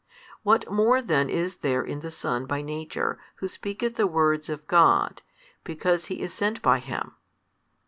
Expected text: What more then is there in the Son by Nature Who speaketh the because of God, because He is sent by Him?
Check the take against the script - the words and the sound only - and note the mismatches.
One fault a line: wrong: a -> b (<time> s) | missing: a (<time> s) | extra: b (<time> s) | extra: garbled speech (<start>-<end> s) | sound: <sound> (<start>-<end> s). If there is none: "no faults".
wrong: because -> words (4.1 s)